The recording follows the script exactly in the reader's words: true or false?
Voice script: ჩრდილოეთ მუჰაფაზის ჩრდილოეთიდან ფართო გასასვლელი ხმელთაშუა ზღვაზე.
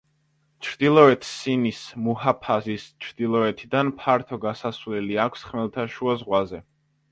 false